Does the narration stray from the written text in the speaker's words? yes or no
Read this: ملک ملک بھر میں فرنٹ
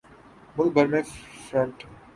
yes